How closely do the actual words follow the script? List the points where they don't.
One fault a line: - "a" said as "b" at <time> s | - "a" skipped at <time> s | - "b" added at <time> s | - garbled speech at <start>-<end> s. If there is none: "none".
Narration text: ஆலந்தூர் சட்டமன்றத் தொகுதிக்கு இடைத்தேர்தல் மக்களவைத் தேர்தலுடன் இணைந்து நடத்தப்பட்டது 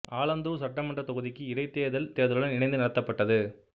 - "மக்களவைத்" skipped at 2.1 s